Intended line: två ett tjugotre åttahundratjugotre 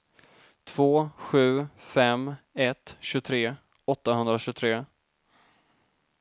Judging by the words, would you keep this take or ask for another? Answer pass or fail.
fail